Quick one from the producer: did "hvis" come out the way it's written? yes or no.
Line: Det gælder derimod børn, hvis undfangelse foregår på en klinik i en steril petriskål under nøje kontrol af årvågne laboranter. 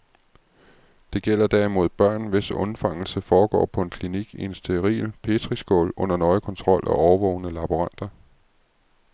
yes